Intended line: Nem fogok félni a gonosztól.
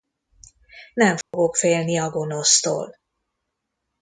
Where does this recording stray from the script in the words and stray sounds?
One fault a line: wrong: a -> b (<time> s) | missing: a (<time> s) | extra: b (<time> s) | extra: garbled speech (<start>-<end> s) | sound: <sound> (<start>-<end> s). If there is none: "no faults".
sound: dropout (1.2-1.3 s)